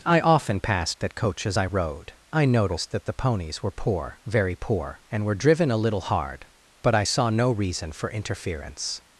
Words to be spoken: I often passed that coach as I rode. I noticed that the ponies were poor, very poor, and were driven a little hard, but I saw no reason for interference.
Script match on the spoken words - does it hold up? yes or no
yes